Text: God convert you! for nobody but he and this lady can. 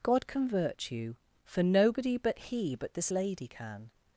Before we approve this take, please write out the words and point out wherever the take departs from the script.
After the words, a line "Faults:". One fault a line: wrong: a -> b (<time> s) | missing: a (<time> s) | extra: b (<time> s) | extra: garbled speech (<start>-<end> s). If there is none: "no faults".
God convert you! for nobody but he but this lady can.
Faults:
wrong: and -> but (2.8 s)